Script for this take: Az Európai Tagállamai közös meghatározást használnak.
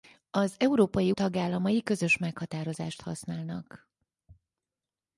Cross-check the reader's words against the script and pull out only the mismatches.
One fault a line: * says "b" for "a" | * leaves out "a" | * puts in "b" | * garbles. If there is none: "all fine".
all fine